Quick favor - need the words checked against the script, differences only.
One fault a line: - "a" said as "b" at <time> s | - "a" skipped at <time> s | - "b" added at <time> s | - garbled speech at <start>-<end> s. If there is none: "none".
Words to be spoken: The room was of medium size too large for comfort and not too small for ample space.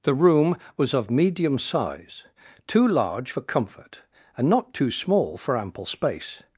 none